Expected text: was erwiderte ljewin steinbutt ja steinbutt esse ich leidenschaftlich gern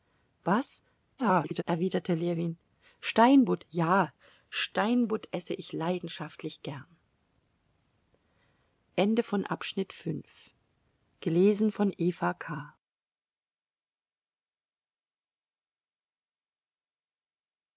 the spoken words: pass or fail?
fail